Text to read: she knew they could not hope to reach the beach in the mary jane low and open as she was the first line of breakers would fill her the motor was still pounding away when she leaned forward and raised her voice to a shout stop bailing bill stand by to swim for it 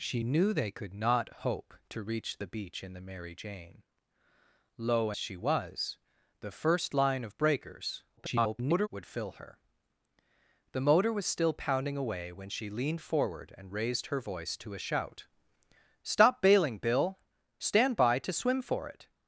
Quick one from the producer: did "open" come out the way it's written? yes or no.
no